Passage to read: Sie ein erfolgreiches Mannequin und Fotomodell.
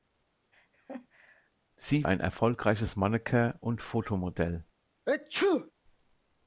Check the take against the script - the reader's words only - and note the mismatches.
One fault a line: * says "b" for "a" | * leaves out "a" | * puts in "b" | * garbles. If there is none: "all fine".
all fine